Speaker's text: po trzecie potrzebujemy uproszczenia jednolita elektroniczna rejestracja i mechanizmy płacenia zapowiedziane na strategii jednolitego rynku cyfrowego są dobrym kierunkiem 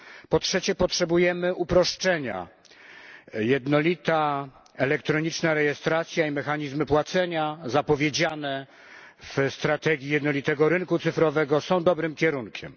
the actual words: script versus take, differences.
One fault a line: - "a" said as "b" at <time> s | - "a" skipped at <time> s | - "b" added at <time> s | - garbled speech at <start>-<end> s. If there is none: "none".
- "na" said as "w" at 9.2 s